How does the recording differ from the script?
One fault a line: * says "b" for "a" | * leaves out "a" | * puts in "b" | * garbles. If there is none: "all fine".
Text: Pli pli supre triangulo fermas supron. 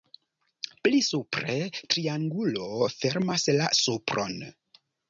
* leaves out "pli"
* puts in "la"